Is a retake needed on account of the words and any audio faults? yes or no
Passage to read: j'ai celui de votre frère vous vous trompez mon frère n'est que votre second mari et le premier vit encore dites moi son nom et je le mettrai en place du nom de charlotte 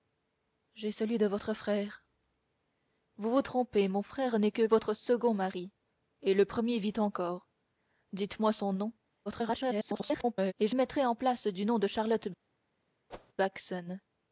yes